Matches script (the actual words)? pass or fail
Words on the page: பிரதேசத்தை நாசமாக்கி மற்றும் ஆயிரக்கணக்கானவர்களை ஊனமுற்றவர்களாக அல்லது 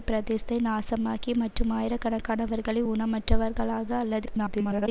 fail